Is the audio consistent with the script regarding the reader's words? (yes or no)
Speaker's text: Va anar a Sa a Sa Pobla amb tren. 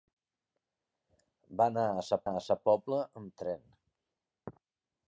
yes